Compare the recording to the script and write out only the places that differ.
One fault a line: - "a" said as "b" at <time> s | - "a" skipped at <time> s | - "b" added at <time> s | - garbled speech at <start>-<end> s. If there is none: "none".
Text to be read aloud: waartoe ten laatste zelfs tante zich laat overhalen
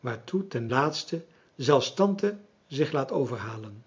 none